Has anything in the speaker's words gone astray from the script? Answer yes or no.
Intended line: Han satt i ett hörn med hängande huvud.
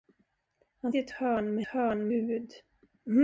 yes